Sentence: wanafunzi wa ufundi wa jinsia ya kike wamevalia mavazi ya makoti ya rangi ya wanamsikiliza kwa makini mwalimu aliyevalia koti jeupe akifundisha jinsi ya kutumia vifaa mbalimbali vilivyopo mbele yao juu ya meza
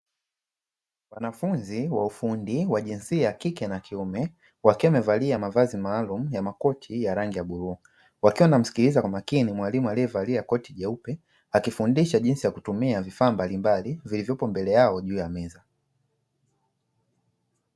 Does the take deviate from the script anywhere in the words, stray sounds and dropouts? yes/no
yes